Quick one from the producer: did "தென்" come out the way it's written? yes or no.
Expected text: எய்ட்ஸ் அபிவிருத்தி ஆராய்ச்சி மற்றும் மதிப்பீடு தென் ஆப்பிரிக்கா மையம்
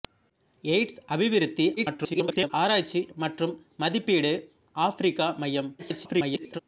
no